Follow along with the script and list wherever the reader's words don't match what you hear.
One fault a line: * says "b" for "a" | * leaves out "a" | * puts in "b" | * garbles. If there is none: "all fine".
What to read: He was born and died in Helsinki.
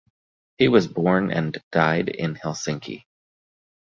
all fine